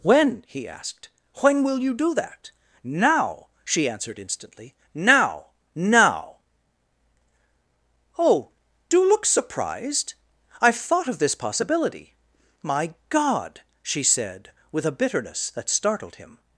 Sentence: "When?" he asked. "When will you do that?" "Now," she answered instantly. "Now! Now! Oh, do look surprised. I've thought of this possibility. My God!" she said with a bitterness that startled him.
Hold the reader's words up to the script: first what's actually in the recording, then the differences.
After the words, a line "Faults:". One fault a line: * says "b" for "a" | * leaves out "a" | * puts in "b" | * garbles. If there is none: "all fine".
"When?" he asked. "When will you do that?" "Now," she answered instantly. "Now! Now! Oh, do look surprised. I've thought of this possibility. My God!" she said with a bitterness that startled him.
Faults:
all fine